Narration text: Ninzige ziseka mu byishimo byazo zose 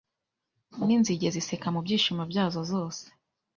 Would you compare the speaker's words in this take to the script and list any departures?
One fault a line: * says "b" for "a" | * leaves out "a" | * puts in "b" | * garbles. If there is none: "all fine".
all fine